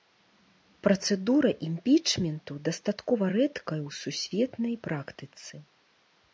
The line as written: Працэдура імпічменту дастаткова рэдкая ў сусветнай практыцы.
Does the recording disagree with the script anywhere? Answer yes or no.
no